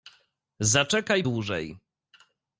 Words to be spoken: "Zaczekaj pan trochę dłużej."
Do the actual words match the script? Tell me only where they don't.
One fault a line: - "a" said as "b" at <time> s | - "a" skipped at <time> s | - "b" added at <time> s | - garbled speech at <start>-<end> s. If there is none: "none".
- "pan trochę" skipped at 1.2 s